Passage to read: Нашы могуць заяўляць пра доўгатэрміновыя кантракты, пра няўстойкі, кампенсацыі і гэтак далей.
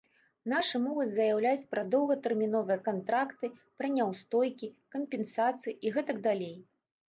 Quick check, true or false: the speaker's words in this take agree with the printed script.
true